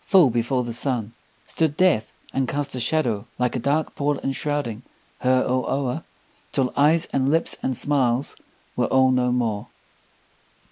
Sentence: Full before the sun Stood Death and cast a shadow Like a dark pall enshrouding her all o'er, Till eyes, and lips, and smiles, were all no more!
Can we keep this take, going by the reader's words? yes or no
yes